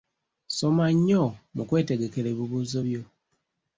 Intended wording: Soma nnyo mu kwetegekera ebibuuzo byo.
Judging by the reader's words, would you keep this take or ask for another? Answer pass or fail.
pass